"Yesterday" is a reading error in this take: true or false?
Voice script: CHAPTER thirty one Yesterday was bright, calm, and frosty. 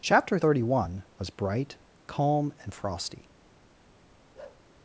true